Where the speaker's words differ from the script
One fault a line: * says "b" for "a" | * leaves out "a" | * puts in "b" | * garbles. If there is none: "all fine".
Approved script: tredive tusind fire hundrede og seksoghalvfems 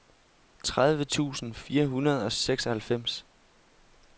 all fine